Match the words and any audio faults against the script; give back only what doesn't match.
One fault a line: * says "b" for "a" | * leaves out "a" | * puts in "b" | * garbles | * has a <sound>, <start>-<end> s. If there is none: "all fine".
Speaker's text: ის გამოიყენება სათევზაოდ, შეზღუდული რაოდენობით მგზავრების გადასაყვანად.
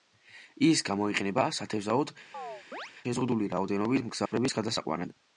* has a chirp, 2.3-2.9 s
* has a dropout, 4.3-4.3 s